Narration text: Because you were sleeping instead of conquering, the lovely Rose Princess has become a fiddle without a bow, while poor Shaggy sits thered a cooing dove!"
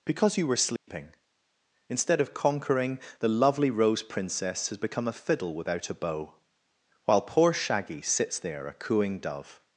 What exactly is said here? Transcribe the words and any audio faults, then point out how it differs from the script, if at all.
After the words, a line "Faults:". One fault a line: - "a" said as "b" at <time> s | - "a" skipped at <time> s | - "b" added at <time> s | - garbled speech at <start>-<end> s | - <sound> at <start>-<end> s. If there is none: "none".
Because you were sleeping instead of conquering, the lovely Rose Princess has become a fiddle without a bow, while poor Shaggy sits there a cooing dove!"
Faults:
- dropout at 0.8-0.9 s
- "thered" said as "there" at 8.4 s